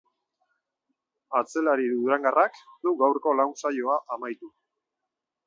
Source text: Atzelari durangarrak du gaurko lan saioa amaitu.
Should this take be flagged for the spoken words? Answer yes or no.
no